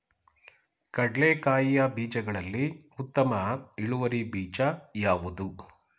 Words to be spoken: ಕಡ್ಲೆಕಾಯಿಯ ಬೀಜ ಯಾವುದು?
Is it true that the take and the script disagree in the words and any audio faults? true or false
true